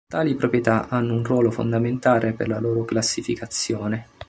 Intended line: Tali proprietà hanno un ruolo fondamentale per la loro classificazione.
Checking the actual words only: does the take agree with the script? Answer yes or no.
yes